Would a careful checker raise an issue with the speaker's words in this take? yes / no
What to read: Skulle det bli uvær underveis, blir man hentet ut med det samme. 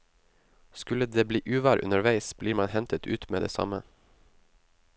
no